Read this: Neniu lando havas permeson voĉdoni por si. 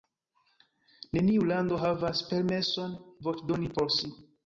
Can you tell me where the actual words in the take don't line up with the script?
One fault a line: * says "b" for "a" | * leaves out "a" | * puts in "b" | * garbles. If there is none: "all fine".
all fine